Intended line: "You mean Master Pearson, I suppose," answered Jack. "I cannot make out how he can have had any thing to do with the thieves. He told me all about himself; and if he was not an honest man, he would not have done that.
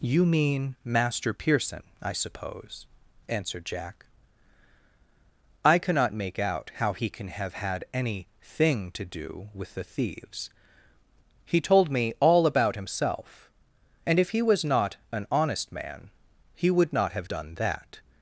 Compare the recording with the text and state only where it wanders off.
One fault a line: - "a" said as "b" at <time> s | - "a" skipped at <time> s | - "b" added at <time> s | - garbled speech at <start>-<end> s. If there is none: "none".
none